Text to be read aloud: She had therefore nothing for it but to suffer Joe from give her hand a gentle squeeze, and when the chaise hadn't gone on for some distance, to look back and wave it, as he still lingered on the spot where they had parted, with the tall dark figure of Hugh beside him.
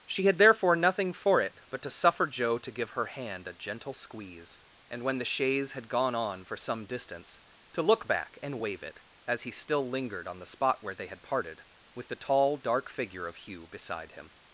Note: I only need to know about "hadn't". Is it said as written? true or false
false